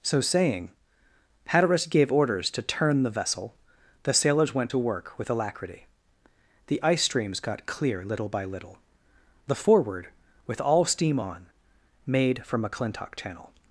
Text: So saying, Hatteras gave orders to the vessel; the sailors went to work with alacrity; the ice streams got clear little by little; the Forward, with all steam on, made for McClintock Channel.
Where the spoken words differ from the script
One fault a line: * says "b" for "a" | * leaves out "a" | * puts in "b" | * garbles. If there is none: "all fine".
* puts in "turn"